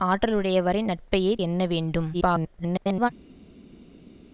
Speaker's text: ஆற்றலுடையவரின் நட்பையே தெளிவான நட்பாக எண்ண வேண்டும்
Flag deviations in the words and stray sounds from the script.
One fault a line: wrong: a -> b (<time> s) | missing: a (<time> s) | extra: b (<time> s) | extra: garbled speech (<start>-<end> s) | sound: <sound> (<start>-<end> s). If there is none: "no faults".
missing: தெளிவான நட்பாக (1.3 s)
extra: garbled speech (2.1-3.1 s)